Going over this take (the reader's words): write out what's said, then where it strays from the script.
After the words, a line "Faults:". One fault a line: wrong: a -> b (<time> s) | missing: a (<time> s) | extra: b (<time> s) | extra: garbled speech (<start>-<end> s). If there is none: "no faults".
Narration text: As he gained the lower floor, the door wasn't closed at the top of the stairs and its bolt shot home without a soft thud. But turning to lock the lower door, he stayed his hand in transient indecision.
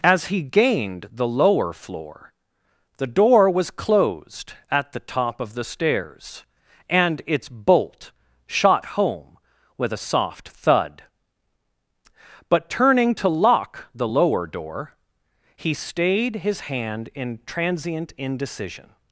As he gained the lower floor, the door was closed at the top of the stairs and its bolt shot home with a soft thud. But turning to lock the lower door, he stayed his hand in transient indecision.
Faults:
wrong: wasn't -> was (3.5 s)
wrong: without -> with (9.8 s)